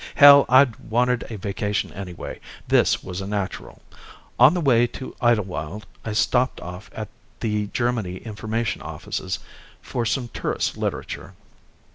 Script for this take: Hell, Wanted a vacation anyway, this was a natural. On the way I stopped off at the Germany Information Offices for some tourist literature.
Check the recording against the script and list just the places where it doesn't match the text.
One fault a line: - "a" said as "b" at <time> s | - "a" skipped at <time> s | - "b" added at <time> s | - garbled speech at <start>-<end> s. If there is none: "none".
- "I'd" added at 0.5 s
- "to Idlewild" added at 4.9 s